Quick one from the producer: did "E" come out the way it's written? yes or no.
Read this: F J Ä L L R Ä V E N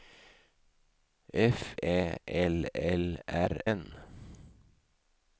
no